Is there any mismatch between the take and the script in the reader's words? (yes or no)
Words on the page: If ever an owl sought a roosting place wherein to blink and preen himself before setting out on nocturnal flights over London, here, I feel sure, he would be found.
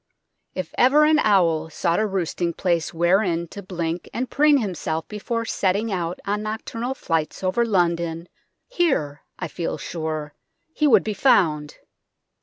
no